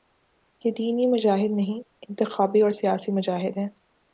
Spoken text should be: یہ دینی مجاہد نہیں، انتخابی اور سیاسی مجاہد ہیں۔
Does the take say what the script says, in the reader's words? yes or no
yes